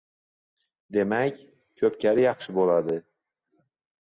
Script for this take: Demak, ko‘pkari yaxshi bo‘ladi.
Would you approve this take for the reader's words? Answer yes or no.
yes